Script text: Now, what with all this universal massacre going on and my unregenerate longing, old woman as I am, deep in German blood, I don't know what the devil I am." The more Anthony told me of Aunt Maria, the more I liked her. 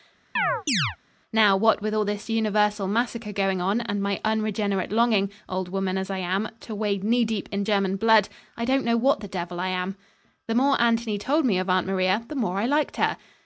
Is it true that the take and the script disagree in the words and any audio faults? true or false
true